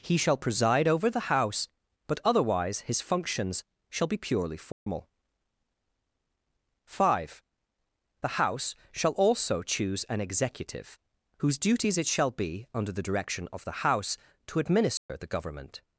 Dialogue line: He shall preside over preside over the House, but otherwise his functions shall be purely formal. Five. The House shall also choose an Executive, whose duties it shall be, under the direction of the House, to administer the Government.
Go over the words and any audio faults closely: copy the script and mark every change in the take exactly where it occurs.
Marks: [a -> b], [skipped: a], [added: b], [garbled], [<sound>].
He shall preside over [skipped: preside over] the House, but otherwise his functions shall be purely formal. [dropout] Five. The House shall also choose an Executive, whose duties it shall be, under the direction of the House, to administer [dropout] the Government.